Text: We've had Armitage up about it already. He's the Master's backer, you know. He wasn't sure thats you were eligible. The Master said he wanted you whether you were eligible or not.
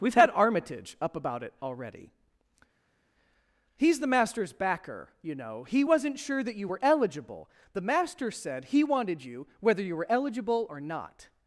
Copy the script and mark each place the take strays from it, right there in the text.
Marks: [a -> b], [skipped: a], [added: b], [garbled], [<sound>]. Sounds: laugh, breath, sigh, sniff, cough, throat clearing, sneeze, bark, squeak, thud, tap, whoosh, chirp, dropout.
We've had Armitage up about it already. He's the Master's backer, you know. He wasn't sure [thats -> that] you were eligible. The Master said he wanted you whether you were eligible or not.